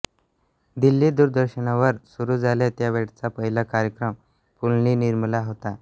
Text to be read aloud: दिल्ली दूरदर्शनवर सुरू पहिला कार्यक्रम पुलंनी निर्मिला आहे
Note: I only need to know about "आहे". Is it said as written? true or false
false